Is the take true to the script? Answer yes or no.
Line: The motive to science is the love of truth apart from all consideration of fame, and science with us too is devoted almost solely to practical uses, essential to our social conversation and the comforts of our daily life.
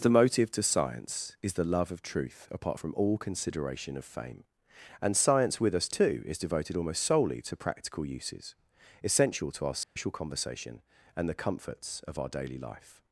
yes